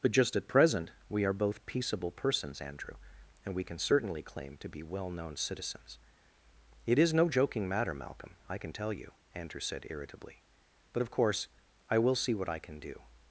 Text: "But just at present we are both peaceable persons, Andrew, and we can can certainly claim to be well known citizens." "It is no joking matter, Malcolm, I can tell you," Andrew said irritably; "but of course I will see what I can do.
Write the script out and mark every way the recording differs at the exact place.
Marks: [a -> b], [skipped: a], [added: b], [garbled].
"But just at present we are both peaceable persons, Andrew, and we can [skipped: can] certainly claim to be well known citizens." "It is no joking matter, Malcolm, I can tell you," Andrew said irritably; "but of course I will see what I can do.